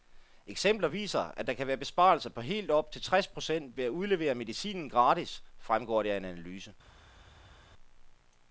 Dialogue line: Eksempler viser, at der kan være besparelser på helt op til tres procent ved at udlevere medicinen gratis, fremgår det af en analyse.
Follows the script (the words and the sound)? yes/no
yes